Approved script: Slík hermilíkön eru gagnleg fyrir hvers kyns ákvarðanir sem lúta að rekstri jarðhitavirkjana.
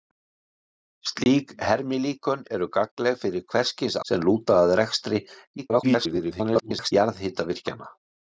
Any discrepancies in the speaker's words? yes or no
yes